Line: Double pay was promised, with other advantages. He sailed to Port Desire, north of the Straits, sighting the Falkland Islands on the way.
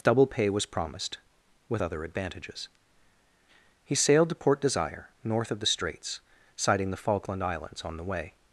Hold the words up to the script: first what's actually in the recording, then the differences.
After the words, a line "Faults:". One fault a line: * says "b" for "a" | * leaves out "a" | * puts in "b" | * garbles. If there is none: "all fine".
Double pay was promised, with other advantages. He sailed to Port Desire, north of the Straits, sighting the Falkland Islands on the way.
Faults:
all fine